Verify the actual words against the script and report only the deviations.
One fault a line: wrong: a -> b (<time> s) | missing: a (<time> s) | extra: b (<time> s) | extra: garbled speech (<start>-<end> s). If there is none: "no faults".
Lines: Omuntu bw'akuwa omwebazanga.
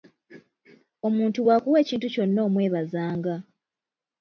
extra: ekintu kyonna (1.8 s)